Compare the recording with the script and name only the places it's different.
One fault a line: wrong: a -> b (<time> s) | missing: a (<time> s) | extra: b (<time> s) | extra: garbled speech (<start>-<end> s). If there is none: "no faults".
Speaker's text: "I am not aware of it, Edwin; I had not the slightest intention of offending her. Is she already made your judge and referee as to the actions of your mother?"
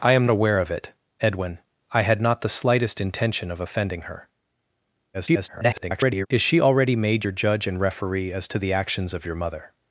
missing: not (0.2 s)
extra: garbled speech (5.1-6.3 s)